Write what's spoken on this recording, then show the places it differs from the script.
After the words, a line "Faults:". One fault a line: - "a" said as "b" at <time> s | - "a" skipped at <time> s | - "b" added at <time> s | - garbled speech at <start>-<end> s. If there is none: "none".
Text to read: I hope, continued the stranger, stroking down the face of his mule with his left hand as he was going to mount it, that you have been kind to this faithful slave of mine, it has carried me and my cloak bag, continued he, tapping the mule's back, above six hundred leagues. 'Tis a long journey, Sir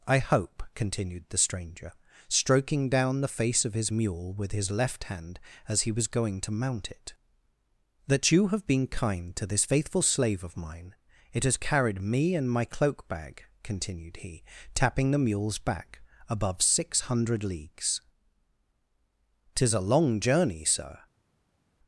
I hope, continued the stranger, stroking down the face of his mule with his left hand as he was going to mount it, that you have been kind to this faithful slave of mine, it has carried me and my cloak bag, continued he, tapping the mule's back, above six hundred leagues. 'Tis a long journey, Sir
Faults:
none